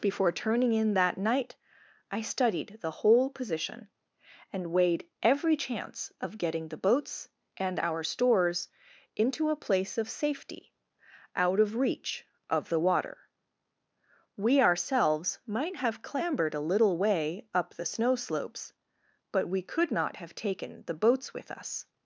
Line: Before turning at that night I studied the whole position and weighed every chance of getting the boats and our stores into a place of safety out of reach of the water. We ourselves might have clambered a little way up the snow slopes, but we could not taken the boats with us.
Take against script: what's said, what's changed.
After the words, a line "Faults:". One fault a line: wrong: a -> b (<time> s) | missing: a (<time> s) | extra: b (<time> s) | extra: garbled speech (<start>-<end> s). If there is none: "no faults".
Before turning in that night I studied the whole position and weighed every chance of getting the boats and our stores into a place of safety out of reach of the water. We ourselves might have clambered a little way up the snow slopes, but we could not have taken the boats with us.
Faults:
wrong: at -> in (0.7 s)
extra: have (20.2 s)